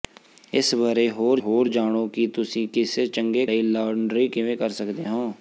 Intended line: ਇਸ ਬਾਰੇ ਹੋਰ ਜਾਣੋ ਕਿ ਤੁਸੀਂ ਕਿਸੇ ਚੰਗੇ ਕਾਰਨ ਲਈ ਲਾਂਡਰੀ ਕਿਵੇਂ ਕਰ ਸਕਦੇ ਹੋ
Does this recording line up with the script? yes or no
no